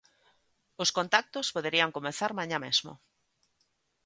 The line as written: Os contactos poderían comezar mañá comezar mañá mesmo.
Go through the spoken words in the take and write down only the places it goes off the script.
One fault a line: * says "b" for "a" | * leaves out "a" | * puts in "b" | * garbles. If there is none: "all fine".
* leaves out "comezar mañá"